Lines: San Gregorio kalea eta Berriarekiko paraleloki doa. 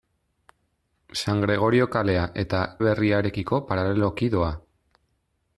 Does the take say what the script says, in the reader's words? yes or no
yes